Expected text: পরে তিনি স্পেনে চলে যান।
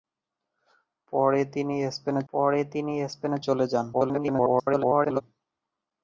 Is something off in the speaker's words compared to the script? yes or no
yes